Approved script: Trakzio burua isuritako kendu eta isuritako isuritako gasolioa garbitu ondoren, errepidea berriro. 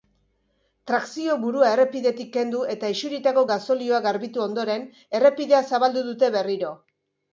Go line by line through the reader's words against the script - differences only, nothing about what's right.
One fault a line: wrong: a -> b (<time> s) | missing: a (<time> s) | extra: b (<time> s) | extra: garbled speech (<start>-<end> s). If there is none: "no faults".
wrong: isuritako -> errepidetik (1.7 s)
missing: isuritako (3.4 s)
extra: zabaldu dute (5.7 s)